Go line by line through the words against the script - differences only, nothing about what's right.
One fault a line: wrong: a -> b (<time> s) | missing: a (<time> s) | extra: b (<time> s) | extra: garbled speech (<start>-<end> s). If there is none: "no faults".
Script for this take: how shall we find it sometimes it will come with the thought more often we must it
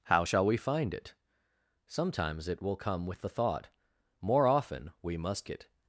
no faults